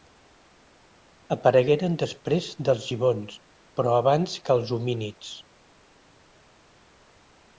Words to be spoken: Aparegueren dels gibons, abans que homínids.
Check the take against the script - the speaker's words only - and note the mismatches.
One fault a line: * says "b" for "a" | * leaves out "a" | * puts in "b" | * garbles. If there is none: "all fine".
* puts in "després"
* puts in "però"
* puts in "els"